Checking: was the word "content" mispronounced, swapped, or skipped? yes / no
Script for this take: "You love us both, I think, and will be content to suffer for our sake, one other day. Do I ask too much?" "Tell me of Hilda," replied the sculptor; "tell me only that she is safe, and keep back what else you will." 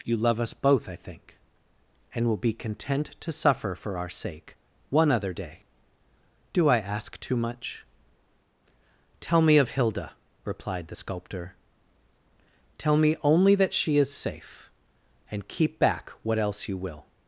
no